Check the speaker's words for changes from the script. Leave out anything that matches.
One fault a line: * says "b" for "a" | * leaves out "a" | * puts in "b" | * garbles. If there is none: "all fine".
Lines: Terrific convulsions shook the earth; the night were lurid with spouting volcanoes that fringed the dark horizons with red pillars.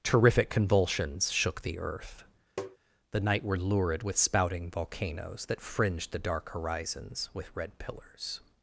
all fine